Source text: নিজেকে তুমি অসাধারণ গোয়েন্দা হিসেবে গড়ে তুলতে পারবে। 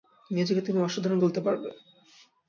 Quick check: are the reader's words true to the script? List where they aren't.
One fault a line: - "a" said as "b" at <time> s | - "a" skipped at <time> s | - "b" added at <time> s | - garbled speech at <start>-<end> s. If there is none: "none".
- "গোয়েন্দা হিসেবে গড়ে" skipped at 1.2 s